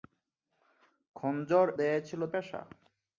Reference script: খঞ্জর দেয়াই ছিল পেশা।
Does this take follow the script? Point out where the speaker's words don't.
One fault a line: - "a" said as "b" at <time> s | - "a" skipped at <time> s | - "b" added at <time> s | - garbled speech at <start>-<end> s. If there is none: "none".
none